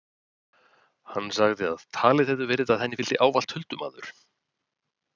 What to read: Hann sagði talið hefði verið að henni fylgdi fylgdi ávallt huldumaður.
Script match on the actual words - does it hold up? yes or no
no